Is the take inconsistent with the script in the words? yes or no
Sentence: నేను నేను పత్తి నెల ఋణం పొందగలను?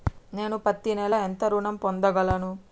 yes